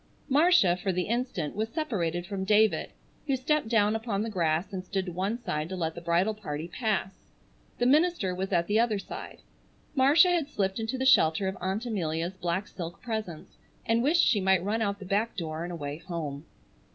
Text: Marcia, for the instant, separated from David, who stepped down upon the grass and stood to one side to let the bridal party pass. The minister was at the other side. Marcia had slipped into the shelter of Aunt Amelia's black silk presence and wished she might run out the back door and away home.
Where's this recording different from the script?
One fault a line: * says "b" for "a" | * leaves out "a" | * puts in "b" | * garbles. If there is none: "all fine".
* puts in "was"